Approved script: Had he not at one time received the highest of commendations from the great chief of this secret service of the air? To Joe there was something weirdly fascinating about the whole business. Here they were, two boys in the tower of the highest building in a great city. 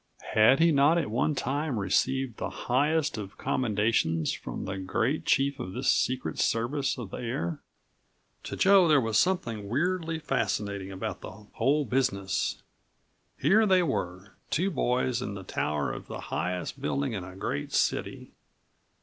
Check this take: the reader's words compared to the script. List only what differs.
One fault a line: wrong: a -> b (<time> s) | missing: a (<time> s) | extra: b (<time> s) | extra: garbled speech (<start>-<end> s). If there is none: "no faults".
no faults